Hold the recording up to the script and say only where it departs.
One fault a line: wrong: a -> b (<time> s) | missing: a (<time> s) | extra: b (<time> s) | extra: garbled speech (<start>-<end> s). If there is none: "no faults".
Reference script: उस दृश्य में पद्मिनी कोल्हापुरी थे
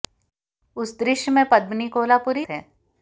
no faults